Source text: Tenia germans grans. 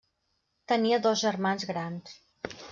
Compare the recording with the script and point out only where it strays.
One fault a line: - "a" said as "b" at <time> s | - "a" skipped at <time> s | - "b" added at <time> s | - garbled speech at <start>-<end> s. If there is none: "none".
- "dos" added at 1.0 s